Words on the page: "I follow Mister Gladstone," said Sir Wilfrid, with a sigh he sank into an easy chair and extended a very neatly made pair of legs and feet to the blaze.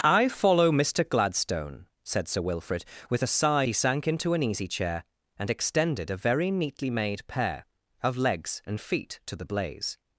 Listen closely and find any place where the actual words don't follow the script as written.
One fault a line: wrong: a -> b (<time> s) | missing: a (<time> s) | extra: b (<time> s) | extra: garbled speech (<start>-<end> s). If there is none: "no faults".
no faults